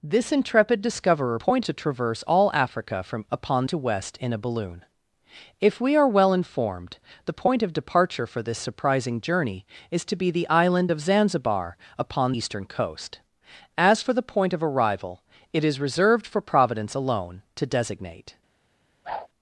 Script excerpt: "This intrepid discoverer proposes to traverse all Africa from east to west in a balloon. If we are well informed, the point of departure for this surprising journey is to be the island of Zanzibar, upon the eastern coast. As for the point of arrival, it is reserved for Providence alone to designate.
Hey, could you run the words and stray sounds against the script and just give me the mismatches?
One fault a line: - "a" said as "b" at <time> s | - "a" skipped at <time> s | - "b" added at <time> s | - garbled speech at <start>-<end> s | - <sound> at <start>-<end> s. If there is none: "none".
- "proposes" said as "point" at 1.4 s
- "east" said as "upon" at 3.3 s
- "the" skipped at 12.3 s
- whoosh at 19.0-19.3 s